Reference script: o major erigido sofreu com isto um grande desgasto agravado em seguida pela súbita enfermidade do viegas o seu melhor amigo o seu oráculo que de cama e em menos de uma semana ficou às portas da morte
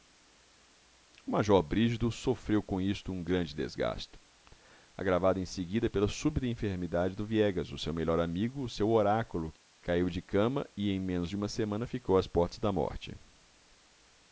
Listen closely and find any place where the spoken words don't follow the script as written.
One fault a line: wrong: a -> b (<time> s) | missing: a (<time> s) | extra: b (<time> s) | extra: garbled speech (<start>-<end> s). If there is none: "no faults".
extra: caiu (9.8 s)